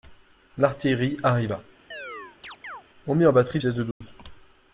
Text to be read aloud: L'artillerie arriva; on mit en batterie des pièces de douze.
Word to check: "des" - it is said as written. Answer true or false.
false